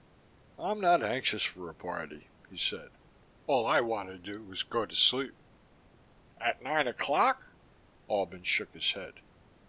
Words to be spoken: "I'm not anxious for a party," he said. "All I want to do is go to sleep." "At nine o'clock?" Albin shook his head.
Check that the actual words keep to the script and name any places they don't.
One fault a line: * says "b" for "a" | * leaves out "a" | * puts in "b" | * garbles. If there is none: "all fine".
all fine